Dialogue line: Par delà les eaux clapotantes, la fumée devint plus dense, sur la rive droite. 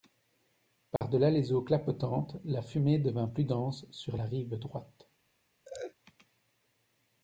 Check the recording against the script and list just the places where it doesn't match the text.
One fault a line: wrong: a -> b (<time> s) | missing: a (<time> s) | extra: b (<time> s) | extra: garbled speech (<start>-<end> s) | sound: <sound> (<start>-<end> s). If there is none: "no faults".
sound: dropout (1.0-1.0 s)
sound: laugh (5.6-5.9 s)